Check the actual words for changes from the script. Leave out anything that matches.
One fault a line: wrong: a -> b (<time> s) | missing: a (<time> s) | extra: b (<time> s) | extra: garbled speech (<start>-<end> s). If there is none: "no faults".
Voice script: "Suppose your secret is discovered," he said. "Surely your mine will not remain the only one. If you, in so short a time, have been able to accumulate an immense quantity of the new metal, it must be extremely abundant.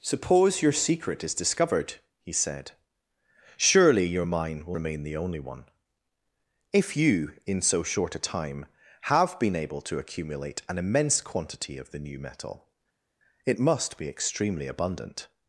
missing: not (4.8 s)